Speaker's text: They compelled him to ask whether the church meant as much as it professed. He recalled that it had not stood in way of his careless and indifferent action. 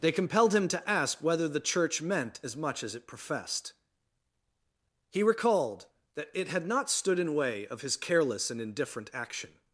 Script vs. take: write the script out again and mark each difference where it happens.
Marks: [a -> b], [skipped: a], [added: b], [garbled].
They compelled him to ask whether the church meant as much as it professed. He recalled that it had not stood in way of his careless and indifferent action.